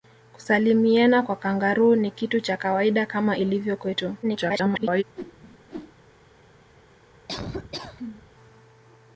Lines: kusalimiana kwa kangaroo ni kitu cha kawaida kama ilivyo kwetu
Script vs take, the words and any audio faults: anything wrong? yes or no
yes